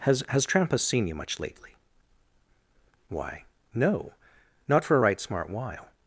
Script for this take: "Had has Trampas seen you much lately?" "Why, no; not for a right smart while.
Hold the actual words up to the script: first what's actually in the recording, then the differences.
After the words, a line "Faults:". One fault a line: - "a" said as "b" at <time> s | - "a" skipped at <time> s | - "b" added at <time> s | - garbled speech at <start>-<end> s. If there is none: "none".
"Has has Trampas seen you much lately?" "Why, no; not for a right smart while.
Faults:
- "Had" said as "Has" at 0.0 s